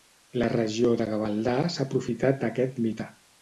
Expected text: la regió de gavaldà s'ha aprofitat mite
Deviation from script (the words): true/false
true